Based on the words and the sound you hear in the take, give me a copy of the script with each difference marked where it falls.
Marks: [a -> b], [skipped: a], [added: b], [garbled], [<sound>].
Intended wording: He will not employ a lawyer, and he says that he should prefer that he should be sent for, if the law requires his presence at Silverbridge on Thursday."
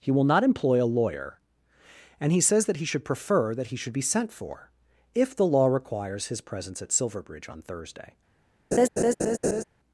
He will not employ a lawyer, and he says that he should prefer that he should be sent for, if the law requires his presence at Silverbridge on Thursday." [laugh]